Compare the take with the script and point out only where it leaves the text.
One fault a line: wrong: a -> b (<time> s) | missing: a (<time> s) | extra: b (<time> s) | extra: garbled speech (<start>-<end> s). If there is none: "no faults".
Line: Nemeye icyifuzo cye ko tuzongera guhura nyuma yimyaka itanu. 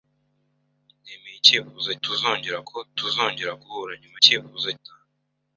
wrong: cye -> tuzongera (2.0 s)
wrong: yimyaka -> icyifuzo (4.2 s)